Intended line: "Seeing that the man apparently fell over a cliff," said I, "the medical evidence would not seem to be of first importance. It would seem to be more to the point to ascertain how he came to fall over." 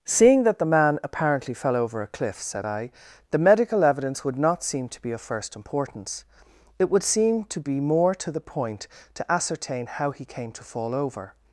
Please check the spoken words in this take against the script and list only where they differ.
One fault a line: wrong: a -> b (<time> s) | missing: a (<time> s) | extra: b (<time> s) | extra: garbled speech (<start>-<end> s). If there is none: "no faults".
no faults